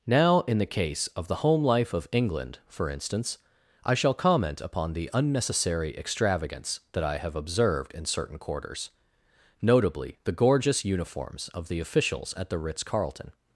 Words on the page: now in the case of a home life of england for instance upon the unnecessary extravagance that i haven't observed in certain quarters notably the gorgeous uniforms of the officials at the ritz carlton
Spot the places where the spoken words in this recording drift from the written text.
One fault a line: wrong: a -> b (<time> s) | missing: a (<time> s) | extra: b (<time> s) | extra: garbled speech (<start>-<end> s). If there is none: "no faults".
wrong: a -> the (1.3 s)
extra: i shall comment (3.8 s)
wrong: haven't -> have (7.2 s)